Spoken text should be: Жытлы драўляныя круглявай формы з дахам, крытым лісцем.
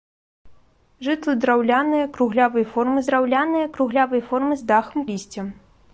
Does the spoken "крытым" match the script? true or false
false